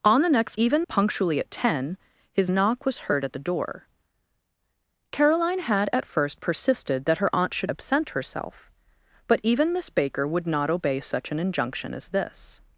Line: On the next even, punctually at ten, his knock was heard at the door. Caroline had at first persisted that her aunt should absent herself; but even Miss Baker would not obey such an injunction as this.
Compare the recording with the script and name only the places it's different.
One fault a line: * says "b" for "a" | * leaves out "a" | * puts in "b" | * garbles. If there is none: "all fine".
all fine